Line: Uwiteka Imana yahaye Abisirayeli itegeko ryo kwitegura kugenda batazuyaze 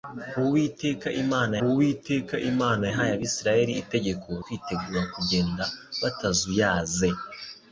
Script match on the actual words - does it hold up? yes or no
no